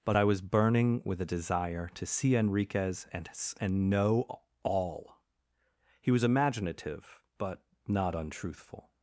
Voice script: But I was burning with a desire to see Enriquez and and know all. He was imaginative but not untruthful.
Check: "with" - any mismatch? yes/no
no